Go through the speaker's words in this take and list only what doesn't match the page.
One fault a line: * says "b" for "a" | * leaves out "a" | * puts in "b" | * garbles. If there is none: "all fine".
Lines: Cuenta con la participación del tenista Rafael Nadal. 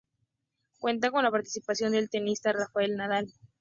all fine